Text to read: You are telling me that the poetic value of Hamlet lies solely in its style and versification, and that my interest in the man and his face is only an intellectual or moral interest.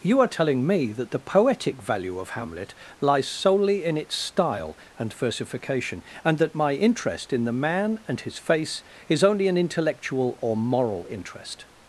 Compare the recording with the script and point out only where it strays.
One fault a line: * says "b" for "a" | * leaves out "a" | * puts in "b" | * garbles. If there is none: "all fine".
all fine